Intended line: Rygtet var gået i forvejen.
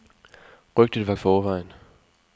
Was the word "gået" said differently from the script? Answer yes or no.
yes